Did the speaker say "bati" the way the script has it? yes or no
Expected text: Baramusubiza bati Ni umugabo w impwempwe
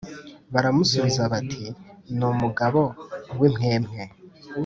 yes